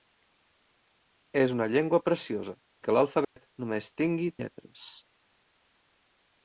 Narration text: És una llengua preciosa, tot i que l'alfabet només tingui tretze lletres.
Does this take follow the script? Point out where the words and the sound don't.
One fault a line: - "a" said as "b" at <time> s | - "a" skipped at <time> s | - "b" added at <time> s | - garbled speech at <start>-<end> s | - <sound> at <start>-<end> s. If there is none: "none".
- "tot" skipped at 2.6 s
- dropout at 3.2-3.4 s
- "tretze" skipped at 4.3 s